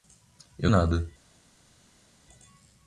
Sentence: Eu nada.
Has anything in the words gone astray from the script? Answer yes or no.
no